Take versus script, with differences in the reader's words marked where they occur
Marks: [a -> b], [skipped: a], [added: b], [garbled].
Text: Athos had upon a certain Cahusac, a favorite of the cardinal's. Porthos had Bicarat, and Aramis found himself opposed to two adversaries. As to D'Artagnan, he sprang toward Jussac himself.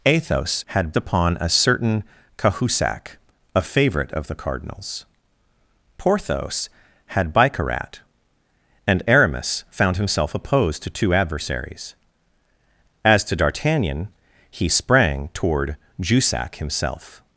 Athos had upon a certain Cahusac, a favorite of the cardinal's. Porthos had Bicarat, and Aramis found himself opposed to two adversaries. As to D'Artagnan, he sprang toward Jussac himself.